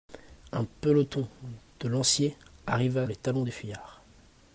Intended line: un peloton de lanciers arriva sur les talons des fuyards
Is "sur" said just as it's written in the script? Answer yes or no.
no